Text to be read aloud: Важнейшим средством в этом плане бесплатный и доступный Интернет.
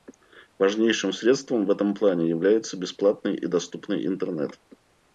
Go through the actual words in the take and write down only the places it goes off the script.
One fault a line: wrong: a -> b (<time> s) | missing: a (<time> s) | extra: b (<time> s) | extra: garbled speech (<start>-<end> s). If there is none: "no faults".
extra: является (2.3 s)